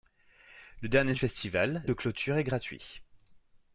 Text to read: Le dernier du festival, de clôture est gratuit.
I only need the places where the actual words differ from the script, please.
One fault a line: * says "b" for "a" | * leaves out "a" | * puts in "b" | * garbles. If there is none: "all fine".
all fine